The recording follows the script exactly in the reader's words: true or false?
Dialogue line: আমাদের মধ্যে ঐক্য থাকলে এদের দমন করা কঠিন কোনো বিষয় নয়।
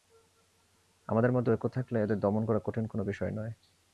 true